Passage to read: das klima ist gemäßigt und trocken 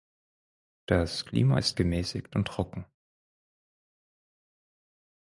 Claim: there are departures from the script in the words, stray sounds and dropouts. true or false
false